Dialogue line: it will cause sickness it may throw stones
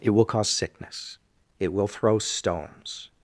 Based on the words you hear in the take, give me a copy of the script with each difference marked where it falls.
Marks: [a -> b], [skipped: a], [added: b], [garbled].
it will cause sickness it [may -> will] throw stones